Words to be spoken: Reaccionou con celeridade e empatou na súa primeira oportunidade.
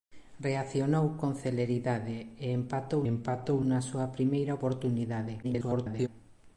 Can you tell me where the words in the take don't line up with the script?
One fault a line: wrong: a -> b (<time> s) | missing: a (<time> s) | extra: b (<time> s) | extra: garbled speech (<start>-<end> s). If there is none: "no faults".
extra: empatou (3.1 s)
extra: garbled speech (5.4-6.1 s)